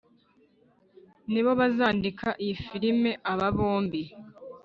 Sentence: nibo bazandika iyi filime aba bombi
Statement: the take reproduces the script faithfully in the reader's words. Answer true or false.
true